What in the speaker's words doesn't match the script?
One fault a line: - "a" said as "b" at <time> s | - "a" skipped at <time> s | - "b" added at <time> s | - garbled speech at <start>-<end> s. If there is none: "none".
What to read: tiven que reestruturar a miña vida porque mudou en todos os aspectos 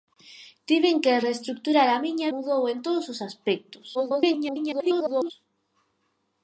- "vida porque" skipped at 2.3 s
- garbled speech at 3.9-5.3 s